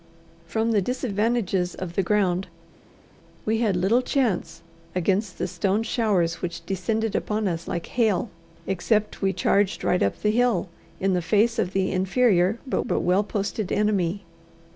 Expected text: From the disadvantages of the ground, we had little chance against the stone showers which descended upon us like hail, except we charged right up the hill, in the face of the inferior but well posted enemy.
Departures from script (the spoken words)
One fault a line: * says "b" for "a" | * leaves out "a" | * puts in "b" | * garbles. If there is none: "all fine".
* puts in "but"